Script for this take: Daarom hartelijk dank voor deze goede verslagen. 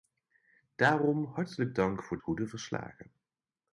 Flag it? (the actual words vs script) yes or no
yes